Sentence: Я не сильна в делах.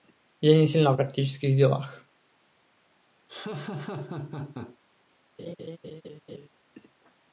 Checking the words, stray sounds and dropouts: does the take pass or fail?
fail